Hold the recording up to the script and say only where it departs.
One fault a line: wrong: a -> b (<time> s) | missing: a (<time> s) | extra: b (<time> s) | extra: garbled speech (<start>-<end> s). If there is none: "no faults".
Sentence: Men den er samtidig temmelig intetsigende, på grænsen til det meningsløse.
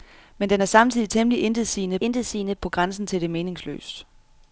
extra: intetsigende (2.0 s)